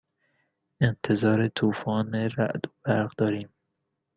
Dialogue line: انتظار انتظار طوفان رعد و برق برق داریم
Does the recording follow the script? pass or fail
fail